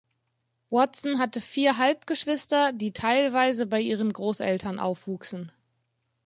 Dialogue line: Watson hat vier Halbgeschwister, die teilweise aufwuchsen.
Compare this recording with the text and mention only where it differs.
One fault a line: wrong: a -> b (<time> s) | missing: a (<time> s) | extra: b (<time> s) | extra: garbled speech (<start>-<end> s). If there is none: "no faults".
wrong: hat -> hatte (1.2 s)
extra: bei ihren Großeltern (3.7 s)